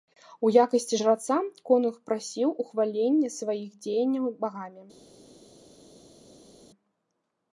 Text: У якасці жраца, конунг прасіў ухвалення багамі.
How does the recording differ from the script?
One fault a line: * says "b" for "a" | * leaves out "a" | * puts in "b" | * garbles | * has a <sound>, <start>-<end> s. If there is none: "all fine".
* puts in "сваіх дзеянняў"